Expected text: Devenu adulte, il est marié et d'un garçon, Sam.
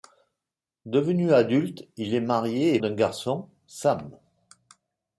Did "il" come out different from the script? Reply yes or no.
no